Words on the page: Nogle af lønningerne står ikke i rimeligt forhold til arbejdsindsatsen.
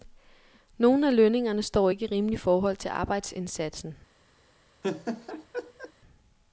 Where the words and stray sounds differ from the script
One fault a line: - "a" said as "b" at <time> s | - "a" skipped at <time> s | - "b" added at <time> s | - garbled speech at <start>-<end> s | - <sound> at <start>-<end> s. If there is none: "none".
- laugh at 4.8-5.9 s